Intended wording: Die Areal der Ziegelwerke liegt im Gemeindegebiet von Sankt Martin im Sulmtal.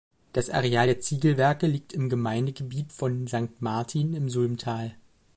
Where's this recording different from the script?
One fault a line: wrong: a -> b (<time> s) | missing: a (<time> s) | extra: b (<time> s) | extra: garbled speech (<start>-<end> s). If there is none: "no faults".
wrong: Die -> Das (0.3 s)